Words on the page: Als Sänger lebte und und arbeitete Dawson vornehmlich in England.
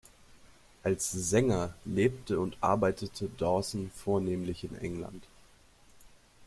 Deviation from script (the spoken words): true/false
true